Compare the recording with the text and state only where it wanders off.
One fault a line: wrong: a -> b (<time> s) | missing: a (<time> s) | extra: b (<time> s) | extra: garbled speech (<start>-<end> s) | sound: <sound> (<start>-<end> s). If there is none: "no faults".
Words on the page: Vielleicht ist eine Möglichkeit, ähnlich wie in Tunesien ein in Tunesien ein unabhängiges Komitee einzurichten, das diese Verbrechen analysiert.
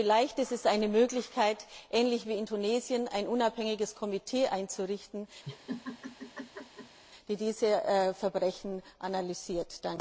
extra: es (0.5 s)
missing: in Tunesien ein (3.3 s)
sound: laugh (5.5-7.0 s)